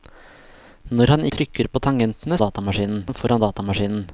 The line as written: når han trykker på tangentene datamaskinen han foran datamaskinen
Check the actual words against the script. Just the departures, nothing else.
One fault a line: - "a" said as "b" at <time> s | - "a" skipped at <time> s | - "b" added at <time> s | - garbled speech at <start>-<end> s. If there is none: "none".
none